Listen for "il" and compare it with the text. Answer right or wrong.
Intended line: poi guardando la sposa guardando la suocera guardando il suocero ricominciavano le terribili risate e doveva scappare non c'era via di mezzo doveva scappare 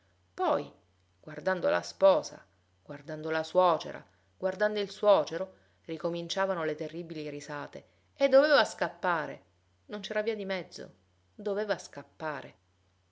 right